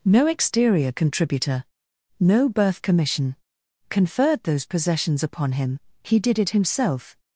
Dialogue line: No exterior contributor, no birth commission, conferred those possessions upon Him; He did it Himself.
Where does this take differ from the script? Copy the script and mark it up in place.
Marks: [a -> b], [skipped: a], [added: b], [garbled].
No exterior contributor, no birth commission, conferred those possessions upon Him; He did it Himself.